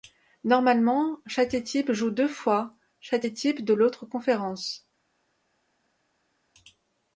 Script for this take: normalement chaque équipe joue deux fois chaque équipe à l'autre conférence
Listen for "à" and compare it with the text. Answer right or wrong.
wrong